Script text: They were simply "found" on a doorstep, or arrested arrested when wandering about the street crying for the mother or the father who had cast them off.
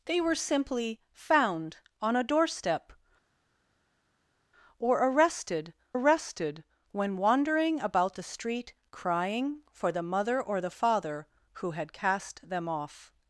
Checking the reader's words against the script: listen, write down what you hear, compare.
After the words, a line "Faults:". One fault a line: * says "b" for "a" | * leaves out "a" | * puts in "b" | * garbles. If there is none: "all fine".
They were simply "found" on a doorstep, or arrested arrested when wandering about the street crying for the mother or the father who had cast them off.
Faults:
all fine